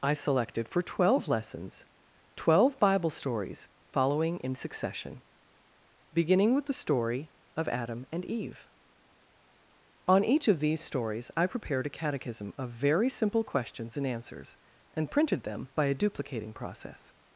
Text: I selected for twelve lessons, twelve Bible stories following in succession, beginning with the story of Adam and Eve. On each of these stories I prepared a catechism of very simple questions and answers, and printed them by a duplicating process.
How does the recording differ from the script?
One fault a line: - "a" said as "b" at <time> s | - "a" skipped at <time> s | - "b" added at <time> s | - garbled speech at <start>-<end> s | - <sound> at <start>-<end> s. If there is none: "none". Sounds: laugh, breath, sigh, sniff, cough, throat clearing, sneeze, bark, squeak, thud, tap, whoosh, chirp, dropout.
none